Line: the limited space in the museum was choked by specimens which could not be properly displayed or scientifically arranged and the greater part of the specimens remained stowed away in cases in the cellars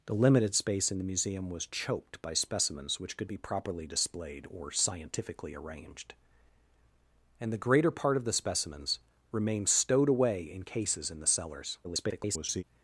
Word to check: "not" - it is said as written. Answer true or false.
false